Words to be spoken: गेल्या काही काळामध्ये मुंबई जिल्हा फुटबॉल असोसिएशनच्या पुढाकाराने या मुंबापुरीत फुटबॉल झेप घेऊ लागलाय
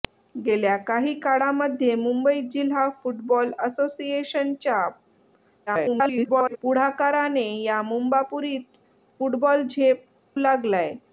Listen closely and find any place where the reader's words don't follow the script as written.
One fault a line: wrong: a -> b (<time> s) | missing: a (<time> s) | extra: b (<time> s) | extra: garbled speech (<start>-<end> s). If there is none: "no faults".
extra: garbled speech (5.7-6.6 s)
missing: घेऊ (10.0 s)